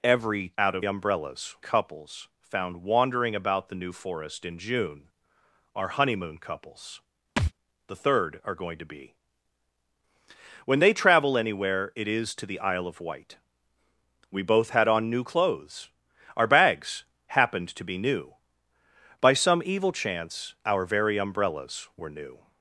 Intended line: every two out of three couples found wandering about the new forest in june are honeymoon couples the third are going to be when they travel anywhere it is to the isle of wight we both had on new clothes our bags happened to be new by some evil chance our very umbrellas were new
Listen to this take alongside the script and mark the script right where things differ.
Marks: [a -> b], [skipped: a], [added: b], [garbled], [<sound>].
every [skipped: two] out of [three -> umbrellas] couples found wandering about the new forest in june are honeymoon couples [thud] the third are going to be when they travel anywhere it is to the isle of wight we both had on new clothes our bags happened to be new by some evil chance our very umbrellas were new